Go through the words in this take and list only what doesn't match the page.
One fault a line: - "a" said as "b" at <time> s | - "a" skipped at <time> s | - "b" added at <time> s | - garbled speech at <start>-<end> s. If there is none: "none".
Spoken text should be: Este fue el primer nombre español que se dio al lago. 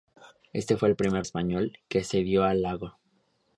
- "nombre" skipped at 1.3 s